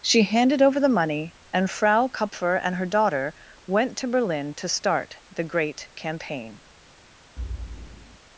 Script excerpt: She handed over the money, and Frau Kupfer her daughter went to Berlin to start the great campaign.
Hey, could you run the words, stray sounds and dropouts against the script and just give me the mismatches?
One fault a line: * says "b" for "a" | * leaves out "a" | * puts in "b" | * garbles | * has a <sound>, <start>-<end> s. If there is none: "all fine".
* puts in "and"
* has a thud, 7.4-8.2 s